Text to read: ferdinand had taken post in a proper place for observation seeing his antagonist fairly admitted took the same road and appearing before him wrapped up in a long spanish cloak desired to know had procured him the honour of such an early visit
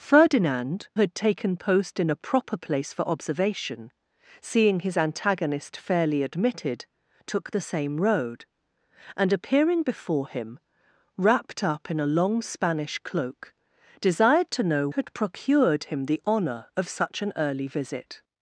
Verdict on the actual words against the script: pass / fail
pass